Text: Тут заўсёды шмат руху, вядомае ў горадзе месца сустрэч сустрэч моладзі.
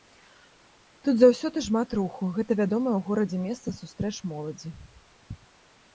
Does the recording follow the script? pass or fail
fail